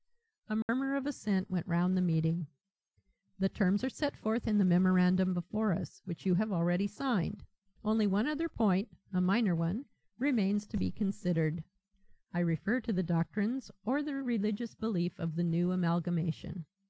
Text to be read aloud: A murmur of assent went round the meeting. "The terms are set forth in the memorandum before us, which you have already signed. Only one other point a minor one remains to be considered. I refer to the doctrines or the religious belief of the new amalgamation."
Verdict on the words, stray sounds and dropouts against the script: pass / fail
fail